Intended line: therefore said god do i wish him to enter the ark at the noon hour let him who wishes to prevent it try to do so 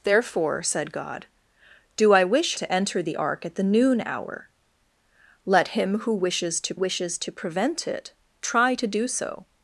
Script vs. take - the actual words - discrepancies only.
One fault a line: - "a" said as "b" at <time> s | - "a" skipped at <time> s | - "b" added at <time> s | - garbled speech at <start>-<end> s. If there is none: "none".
- "him" skipped at 2.5 s
- "wishes to" added at 6.7 s